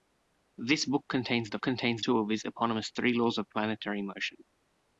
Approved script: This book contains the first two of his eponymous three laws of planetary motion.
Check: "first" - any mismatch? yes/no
yes